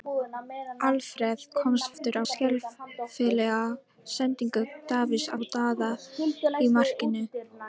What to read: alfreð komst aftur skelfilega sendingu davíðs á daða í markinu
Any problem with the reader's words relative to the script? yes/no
no